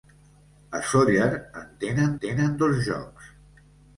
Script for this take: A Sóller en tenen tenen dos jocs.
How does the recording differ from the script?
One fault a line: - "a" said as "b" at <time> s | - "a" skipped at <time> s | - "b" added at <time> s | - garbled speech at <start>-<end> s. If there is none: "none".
none